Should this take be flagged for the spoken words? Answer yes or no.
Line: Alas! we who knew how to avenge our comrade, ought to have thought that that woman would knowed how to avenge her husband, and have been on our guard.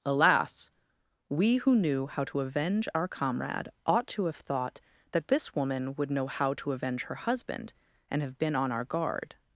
yes